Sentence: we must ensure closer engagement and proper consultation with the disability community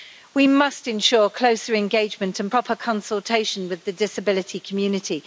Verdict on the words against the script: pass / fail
pass